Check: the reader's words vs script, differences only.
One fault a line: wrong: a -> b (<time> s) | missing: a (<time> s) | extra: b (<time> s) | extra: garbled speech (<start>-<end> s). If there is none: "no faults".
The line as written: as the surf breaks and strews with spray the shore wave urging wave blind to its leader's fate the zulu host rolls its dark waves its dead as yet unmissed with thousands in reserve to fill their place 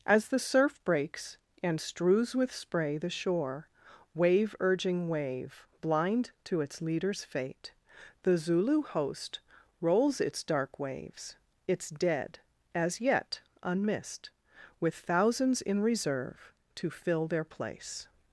no faults